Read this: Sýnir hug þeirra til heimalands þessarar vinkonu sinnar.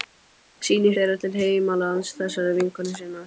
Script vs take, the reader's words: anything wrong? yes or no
yes